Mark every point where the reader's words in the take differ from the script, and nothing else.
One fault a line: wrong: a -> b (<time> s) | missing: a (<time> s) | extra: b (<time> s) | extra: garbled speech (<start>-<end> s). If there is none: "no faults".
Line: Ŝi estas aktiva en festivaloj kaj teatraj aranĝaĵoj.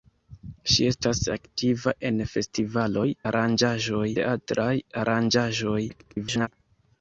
wrong: kaj -> aranĝaĵoj (3.3 s)
extra: garbled speech (5.9-6.5 s)